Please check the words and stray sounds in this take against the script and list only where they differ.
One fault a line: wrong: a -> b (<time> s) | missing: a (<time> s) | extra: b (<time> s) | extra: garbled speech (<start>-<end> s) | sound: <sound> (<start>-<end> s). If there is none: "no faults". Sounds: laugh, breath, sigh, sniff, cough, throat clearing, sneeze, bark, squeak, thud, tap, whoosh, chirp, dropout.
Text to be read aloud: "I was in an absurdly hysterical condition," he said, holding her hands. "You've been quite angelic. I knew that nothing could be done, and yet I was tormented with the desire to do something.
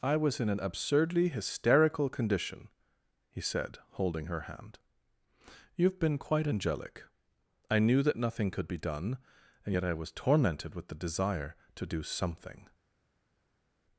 wrong: hands -> hand (4.4 s)